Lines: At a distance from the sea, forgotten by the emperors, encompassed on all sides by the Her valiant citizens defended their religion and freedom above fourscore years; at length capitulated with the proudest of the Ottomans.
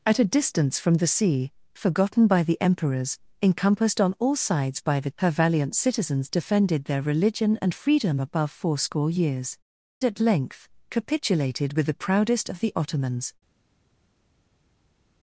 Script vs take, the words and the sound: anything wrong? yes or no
no